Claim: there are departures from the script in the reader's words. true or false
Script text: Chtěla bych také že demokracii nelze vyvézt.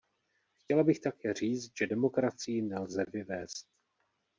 true